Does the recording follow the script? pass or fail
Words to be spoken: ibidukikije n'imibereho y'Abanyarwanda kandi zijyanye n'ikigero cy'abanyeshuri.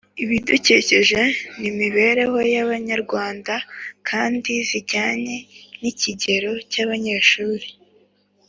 pass